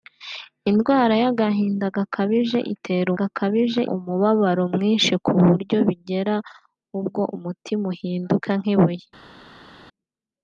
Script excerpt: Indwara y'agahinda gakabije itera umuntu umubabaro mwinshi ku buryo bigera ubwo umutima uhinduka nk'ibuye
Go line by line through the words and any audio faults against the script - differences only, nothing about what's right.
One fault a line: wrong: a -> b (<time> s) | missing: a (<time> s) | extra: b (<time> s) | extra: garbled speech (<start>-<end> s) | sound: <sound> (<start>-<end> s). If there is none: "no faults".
wrong: umuntu -> gakabije (3.2 s)